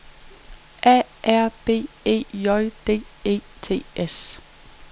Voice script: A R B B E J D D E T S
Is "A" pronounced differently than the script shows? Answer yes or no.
no